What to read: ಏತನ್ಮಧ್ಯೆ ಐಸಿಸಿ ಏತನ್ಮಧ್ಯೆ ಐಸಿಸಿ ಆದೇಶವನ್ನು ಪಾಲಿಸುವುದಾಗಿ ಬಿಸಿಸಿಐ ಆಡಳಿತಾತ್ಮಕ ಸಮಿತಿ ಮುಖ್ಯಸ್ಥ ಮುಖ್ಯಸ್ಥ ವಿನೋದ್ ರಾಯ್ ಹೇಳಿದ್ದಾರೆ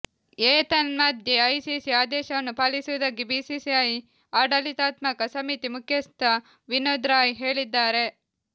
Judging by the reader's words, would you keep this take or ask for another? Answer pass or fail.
fail